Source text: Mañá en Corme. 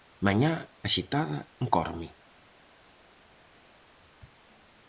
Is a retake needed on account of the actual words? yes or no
yes